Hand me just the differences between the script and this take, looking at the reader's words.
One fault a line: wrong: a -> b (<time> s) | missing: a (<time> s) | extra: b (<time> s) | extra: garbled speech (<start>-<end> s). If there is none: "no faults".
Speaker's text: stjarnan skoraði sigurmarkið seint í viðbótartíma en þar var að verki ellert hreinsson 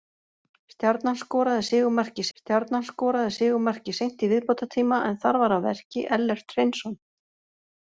extra: stjarnan skoraði sigurmarkið (2.4 s)